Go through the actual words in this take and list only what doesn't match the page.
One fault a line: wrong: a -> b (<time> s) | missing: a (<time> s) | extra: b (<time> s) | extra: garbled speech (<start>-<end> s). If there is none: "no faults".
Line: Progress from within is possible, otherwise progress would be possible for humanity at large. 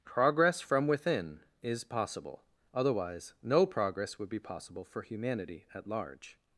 extra: no (3.4 s)